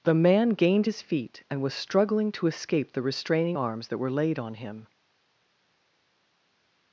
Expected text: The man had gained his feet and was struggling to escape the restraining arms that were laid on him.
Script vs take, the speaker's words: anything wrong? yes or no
yes